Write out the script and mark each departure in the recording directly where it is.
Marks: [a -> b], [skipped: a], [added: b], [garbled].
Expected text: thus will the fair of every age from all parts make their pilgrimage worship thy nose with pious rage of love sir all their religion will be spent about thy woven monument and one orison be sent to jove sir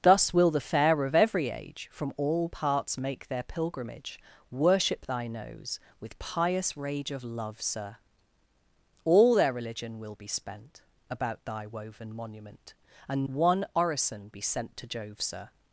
thus will the fair of every age from all parts make their pilgrimage worship thy nose with pious rage of love sir all their religion will be spent about thy woven monument and one orison be sent to jove sir